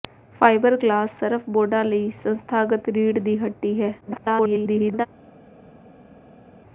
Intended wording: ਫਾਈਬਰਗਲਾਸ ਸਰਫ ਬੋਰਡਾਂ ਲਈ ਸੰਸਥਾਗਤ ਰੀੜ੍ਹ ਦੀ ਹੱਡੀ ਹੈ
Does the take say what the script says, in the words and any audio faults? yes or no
no